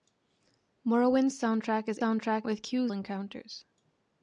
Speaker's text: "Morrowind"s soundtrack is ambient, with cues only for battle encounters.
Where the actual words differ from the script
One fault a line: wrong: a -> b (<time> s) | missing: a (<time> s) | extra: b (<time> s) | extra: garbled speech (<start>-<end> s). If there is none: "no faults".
wrong: ambient -> soundtrack (2.0 s)
missing: only for battle (2.9 s)